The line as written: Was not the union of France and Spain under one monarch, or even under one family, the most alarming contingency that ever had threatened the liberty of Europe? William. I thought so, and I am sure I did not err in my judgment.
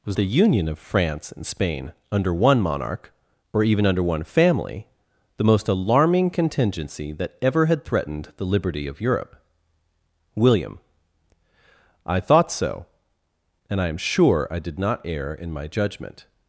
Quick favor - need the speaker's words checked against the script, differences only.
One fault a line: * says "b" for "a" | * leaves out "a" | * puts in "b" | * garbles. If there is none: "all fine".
* leaves out "not"